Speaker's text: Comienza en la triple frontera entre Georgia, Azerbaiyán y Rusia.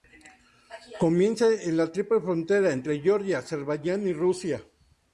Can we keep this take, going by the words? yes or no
yes